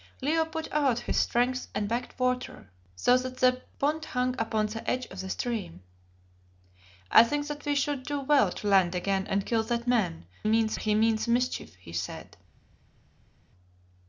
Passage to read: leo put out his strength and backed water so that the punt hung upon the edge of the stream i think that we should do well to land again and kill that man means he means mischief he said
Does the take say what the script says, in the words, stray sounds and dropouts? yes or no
yes